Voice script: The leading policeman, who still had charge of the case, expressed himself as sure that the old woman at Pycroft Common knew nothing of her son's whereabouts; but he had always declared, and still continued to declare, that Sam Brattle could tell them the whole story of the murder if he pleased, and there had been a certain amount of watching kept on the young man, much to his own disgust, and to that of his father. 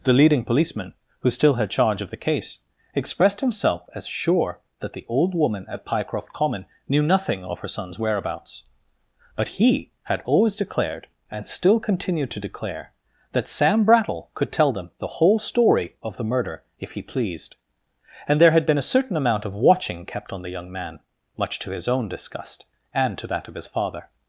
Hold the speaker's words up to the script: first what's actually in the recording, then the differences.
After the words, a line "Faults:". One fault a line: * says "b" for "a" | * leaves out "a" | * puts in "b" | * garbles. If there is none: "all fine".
The leading policeman, who still had charge of the case, expressed himself as sure that the old woman at Pycroft Common knew nothing of her son's whereabouts; but he had always declared, and still continued to declare, that Sam Brattle could tell them the whole story of the murder if he pleased, and there had been a certain amount of watching kept on the young man, much to his own disgust, and to that of his father.
Faults:
all fine